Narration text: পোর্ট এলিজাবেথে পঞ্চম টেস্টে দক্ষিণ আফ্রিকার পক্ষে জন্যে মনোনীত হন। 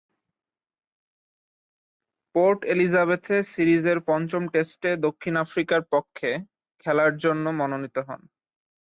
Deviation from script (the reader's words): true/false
true